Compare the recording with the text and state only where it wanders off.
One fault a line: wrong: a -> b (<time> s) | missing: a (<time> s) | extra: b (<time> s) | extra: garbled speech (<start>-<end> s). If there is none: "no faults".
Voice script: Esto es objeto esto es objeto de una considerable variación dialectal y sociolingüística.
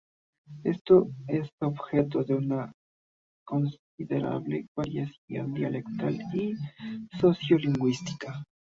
missing: esto es objeto (2.2 s)